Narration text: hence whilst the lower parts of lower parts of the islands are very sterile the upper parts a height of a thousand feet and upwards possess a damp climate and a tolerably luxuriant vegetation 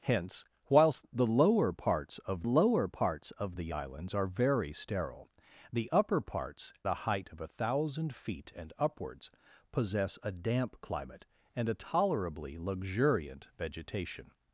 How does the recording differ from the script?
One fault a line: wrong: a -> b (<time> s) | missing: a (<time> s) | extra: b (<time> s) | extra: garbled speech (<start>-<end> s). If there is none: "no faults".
no faults